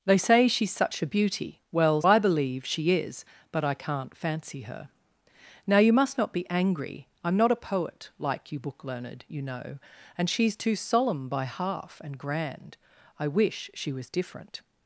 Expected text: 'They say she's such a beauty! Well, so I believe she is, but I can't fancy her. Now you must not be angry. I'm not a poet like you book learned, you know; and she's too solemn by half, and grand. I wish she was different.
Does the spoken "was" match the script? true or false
true